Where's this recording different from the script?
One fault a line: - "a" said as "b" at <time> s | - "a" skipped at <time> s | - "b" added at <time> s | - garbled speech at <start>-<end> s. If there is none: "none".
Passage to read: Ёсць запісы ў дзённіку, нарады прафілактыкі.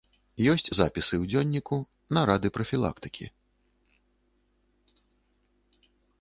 none